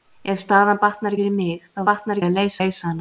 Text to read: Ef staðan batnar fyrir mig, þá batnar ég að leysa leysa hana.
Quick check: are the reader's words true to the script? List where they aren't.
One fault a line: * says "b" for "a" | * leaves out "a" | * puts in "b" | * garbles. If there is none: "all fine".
all fine